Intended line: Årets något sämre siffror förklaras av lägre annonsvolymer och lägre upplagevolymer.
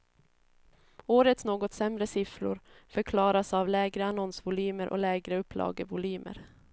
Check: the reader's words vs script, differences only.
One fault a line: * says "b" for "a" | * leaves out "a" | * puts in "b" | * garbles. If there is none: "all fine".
all fine